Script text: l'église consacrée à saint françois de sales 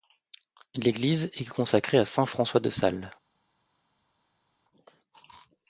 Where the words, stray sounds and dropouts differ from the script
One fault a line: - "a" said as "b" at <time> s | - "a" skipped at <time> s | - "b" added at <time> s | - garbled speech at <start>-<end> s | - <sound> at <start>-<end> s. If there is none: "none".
- "est" added at 1.4 s